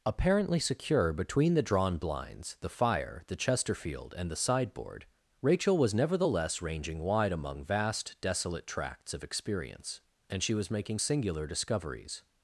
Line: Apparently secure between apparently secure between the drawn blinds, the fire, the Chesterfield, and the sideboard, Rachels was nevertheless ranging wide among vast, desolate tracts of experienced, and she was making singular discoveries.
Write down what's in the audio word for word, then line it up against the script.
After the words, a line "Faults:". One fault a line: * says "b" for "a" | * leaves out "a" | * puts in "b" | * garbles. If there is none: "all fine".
Apparently secure between the drawn blinds, the fire, the Chesterfield, and the sideboard, Rachel was nevertheless ranging wide among vast, desolate tracts of experience, and she was making singular discoveries.
Faults:
* leaves out "apparently secure between"
* says "Rachel" for "Rachels"
* says "experience" for "experienced"